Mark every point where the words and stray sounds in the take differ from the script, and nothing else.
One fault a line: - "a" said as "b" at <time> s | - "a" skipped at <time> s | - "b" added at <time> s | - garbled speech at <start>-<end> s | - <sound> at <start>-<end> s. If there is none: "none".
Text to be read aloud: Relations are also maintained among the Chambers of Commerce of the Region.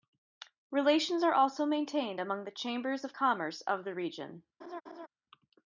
- laugh at 4.6-5.1 s